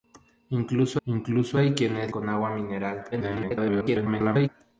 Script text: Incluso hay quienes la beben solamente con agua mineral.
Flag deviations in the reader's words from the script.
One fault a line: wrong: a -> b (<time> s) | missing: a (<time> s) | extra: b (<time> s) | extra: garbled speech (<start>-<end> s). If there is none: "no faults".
extra: incluso (1.0 s)
missing: la beben solamente (2.1 s)
extra: garbled speech (3.1-4.5 s)